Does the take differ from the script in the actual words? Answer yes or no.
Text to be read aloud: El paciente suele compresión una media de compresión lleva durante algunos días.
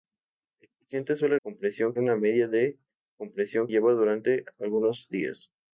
no